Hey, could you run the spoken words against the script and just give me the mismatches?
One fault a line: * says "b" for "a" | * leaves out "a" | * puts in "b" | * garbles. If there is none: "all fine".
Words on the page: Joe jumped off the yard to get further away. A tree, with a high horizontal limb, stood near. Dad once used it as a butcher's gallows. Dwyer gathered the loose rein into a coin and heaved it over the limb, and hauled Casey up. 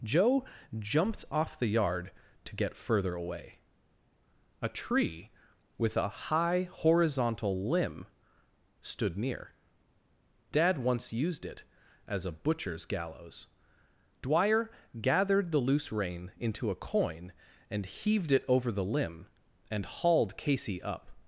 all fine